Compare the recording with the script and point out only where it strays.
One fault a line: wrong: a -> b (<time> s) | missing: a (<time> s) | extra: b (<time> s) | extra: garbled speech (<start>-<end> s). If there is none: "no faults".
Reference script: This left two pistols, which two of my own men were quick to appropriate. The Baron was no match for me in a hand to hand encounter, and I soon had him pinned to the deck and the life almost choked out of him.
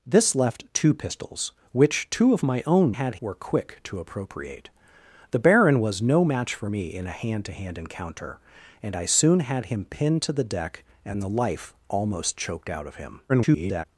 wrong: men -> had (2.9 s)
extra: garbled speech (13.3-13.8 s)